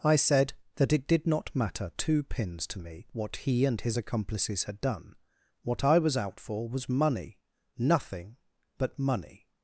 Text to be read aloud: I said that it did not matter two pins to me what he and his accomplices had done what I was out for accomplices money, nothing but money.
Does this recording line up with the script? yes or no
no